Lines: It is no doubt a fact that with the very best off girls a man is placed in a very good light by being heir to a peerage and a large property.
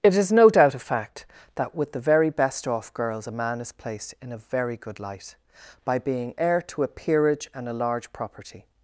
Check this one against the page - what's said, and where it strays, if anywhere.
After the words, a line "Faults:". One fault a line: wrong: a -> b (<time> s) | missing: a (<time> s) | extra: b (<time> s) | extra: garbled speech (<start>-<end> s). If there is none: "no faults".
It is no doubt a fact that with the very best off girls a man is placed in a very good light by being heir to a peerage and a large property.
Faults:
no faults